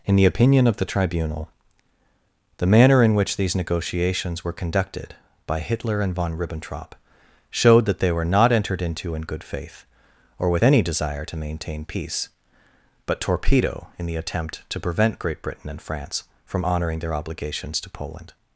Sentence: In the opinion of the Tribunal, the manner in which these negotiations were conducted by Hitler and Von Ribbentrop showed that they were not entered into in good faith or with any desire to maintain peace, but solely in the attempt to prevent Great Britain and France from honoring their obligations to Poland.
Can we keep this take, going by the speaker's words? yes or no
no